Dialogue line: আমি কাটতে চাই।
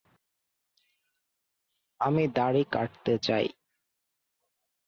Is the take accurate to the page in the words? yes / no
no